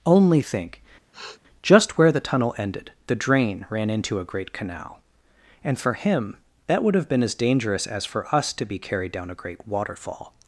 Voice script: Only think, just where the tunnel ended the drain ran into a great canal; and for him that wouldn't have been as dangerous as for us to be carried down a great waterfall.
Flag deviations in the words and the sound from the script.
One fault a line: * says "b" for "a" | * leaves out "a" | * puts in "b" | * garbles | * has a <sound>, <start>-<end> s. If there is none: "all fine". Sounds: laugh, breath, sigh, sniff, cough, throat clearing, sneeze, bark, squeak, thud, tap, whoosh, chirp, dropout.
* has a sniff, 1.1-1.4 s
* says "would" for "wouldn't"